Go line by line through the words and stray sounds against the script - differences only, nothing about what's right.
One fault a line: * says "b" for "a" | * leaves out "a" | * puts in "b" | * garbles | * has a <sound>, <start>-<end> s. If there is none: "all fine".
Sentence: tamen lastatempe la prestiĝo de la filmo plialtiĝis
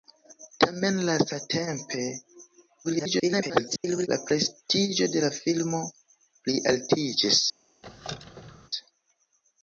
* garbles
* has a squeak, 7.8-8.7 s